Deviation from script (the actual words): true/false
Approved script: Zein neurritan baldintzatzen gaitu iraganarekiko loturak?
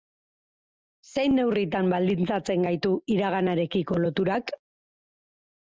false